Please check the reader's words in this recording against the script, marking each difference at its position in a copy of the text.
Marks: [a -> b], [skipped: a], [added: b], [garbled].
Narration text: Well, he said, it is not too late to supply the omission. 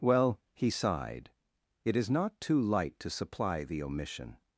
Well, he [said, -> sighed] it is not too [late -> light] to supply the omission.